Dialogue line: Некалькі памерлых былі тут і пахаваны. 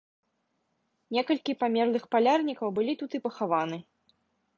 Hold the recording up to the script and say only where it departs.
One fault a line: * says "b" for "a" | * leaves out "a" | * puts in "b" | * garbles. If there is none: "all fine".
* puts in "палярнікаў"